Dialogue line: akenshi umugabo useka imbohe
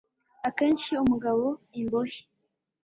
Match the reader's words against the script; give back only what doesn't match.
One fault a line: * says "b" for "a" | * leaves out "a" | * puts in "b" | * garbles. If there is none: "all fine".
* leaves out "useka"